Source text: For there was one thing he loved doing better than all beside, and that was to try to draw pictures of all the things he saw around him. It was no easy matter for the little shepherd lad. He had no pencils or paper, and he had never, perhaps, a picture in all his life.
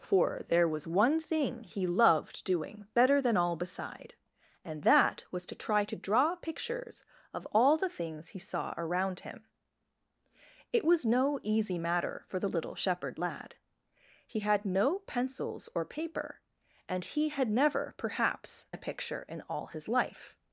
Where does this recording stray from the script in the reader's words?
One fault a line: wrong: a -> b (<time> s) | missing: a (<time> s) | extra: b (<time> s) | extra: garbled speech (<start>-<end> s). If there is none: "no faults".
no faults